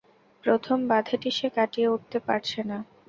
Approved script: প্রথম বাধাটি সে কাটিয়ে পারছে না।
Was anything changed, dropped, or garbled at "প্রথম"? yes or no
no